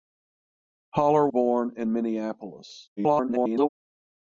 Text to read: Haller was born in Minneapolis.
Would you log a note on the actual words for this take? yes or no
yes